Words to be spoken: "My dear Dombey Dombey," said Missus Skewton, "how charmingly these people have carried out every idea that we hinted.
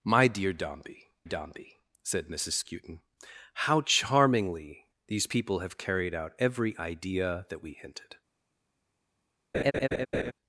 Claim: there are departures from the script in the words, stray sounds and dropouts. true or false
true